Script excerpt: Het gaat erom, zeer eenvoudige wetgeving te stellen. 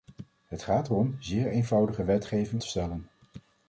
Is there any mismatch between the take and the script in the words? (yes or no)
no